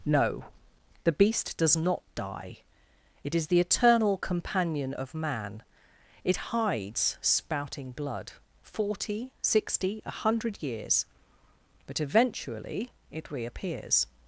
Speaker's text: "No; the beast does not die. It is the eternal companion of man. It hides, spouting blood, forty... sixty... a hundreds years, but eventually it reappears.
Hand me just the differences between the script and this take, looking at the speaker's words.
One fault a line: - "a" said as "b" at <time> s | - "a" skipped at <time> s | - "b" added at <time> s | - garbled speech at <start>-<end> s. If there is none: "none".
- "hundreds" said as "hundred" at 10.1 s